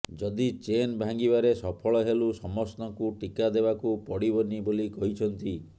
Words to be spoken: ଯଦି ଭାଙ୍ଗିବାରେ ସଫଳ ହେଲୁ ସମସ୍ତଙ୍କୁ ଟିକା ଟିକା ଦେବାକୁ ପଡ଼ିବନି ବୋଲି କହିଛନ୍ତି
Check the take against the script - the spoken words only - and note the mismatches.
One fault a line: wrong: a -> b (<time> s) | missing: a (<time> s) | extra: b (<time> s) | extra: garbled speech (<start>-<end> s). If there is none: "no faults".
extra: ଚେନ୍ (0.6 s)
missing: ଟିକା (3.5 s)